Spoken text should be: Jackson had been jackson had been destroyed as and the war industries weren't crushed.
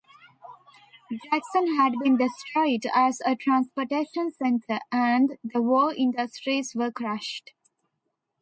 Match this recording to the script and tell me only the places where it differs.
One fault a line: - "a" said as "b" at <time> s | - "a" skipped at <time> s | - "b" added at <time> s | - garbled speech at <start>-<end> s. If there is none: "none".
- "jackson had been destroyed as" said as "destroyed as a transportation center" at 2.2 s
- "weren't" said as "were" at 6.7 s